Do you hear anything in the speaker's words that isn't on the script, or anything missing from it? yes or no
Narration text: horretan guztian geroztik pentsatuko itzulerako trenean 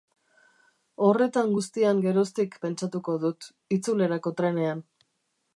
yes